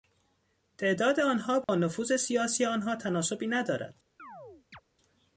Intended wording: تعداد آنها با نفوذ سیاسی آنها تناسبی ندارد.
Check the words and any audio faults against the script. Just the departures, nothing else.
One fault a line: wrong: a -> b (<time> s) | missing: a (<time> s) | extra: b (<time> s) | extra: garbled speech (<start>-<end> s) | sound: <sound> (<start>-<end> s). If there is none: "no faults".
sound: dropout (1.6-1.7 s)
sound: chirp (4.2-4.8 s)